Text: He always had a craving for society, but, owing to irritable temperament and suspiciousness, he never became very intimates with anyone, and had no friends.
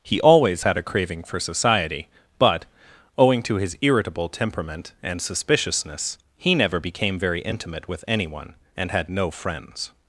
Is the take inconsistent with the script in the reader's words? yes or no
yes